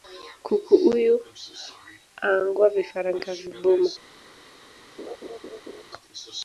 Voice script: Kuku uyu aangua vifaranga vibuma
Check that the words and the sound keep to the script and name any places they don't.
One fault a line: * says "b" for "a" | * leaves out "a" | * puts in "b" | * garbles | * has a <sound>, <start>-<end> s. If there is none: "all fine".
* has a laugh, 5.0-5.8 s